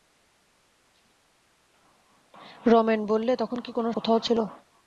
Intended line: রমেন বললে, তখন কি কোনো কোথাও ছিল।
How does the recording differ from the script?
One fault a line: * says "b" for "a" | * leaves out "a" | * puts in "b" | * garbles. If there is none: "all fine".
all fine